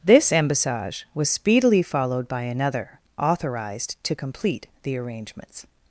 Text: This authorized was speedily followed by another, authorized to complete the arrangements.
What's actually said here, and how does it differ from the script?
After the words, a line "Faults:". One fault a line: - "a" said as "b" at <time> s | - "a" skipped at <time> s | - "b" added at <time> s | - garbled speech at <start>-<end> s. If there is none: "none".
This embassage was speedily followed by another, authorized to complete the arrangements.
Faults:
- "authorized" said as "embassage" at 0.3 s